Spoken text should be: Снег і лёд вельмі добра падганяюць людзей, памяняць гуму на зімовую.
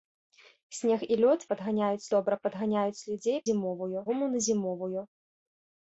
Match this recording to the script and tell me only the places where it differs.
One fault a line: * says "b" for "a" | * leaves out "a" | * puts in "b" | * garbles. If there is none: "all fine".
* says "падганяюць" for "вельмі"
* says "зімовую" for "памяняць"